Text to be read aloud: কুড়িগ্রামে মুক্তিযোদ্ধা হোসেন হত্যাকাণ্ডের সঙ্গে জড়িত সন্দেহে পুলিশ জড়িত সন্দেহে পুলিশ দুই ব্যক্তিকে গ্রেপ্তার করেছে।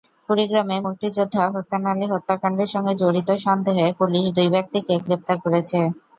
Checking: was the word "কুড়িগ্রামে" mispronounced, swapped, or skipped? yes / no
no